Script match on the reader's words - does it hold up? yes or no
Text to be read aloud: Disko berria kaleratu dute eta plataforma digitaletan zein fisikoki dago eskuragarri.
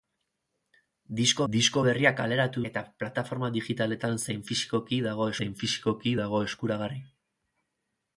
no